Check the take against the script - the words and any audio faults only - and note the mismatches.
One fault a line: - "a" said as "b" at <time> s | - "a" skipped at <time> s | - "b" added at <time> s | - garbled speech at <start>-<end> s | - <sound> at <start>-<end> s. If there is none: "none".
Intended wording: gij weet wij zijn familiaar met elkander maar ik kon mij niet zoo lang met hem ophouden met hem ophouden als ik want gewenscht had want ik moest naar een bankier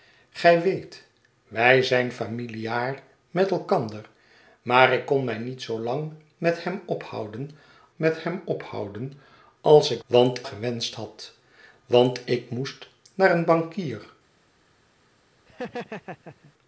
- laugh at 15.5-16.5 s